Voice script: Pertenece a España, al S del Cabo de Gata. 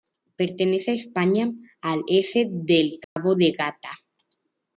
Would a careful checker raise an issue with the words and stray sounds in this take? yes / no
yes